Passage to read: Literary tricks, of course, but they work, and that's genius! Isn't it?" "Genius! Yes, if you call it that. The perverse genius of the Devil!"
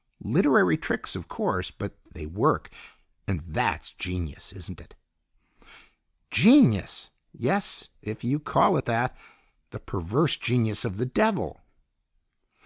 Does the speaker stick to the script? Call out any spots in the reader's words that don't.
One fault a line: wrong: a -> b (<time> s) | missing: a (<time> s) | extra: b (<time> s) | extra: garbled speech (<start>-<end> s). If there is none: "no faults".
no faults